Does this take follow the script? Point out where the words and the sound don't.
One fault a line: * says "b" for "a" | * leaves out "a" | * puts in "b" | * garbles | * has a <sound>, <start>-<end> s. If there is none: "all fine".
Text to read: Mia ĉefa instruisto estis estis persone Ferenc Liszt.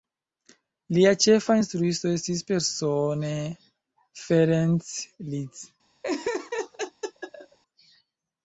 * says "Lia" for "Mia"
* leaves out "estis"
* has a laugh, 6.0-7.6 s